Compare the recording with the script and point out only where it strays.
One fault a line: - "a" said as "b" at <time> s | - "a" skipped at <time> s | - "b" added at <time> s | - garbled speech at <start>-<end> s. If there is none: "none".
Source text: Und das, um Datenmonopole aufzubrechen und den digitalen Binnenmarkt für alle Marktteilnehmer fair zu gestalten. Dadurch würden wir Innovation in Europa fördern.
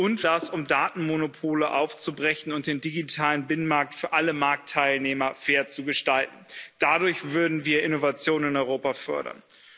none